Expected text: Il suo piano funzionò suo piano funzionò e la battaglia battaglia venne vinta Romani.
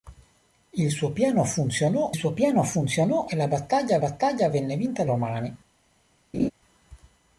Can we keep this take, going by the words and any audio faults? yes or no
no